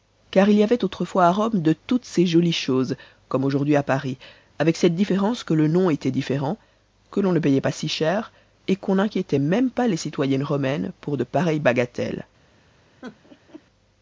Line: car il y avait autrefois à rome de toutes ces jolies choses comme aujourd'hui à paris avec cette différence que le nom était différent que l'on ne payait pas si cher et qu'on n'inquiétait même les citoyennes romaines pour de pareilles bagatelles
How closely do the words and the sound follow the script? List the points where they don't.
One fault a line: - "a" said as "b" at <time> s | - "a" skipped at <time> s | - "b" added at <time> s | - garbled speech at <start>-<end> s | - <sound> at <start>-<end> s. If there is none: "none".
- "pas" added at 9.7 s
- laugh at 13.0-13.6 s